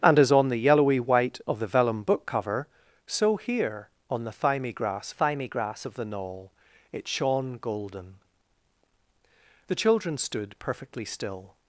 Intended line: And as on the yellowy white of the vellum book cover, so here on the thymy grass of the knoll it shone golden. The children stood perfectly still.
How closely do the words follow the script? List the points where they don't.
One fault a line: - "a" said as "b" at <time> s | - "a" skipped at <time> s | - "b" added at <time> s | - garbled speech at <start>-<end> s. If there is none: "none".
- "thymy grass" added at 5.1 s